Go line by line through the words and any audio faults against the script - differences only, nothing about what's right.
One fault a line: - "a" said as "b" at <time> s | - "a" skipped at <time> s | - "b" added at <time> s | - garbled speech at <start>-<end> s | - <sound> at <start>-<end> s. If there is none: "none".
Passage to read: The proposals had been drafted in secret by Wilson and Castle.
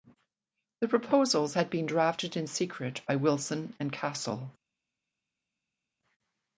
none